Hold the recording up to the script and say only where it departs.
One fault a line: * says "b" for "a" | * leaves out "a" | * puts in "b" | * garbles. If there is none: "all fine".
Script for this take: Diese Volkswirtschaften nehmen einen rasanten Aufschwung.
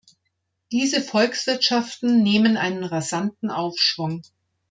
all fine